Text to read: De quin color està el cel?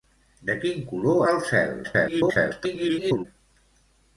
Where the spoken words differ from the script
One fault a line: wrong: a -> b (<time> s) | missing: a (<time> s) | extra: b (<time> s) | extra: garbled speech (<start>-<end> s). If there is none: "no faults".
missing: està (1.2 s)
extra: garbled speech (1.8-3.3 s)